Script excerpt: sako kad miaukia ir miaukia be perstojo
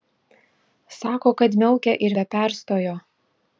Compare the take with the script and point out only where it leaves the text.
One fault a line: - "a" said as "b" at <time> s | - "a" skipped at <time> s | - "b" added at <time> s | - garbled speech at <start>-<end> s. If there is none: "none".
- "miaukia" skipped at 2.1 s